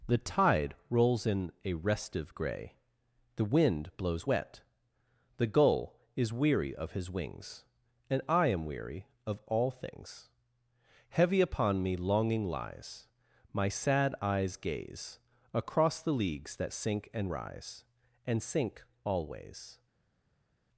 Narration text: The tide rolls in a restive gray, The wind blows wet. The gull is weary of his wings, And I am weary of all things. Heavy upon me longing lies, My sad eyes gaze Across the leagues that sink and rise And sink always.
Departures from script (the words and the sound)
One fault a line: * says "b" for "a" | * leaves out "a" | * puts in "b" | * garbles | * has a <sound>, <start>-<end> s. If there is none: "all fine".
all fine